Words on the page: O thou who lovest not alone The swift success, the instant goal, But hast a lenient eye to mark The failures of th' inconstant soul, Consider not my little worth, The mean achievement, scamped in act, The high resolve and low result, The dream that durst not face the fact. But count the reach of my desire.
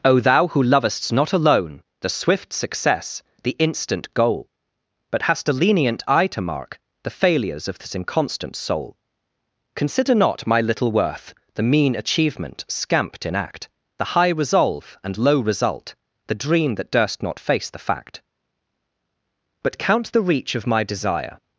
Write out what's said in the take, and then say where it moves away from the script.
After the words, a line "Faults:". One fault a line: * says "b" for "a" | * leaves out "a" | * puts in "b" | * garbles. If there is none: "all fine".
O thou who lovest not alone The swift success, the instant goal, But hast a lenient eye to mark The failures of this' inconstant soul, Consider not my little worth, The mean achievement, scamped in act, The high resolve and low result, The dream that durst not face the fact. But count the reach of my desire.
Faults:
* says "this" for "th"